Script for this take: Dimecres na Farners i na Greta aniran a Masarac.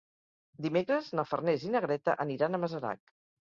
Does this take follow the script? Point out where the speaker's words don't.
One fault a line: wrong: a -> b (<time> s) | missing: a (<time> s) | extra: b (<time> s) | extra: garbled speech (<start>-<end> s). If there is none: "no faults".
no faults